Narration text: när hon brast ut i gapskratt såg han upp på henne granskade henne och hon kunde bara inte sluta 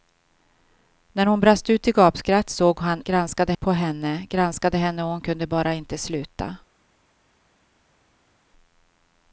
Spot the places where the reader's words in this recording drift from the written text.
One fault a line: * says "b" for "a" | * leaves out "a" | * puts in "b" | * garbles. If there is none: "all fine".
* says "granskade" for "upp"